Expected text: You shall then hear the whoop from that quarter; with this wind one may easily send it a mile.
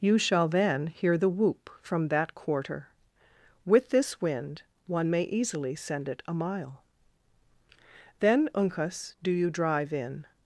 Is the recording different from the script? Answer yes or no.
yes